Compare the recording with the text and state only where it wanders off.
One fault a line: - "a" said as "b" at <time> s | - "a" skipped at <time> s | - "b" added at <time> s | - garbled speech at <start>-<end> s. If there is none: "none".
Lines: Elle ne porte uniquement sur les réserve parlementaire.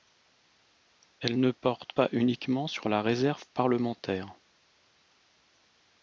- "pas" added at 1.9 s
- "les" said as "la" at 2.9 s